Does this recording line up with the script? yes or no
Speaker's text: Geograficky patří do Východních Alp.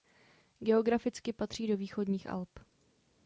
yes